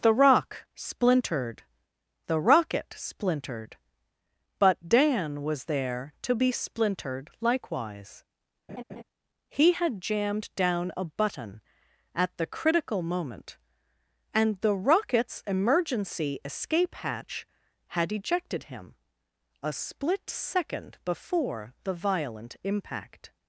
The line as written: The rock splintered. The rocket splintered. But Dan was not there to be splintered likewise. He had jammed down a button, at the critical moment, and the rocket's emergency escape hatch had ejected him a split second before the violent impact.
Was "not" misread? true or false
true